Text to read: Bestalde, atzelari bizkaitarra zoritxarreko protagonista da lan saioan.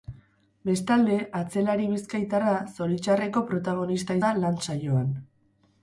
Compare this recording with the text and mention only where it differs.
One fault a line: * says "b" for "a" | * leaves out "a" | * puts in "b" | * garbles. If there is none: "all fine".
all fine